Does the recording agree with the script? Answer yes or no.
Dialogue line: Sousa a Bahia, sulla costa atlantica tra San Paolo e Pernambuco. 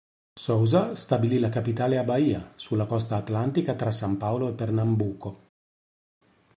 no